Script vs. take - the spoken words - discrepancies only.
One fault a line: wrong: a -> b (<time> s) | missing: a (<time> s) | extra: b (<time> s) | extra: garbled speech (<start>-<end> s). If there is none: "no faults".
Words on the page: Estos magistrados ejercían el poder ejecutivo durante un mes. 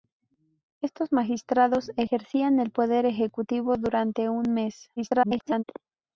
extra: garbled speech (5.0-5.6 s)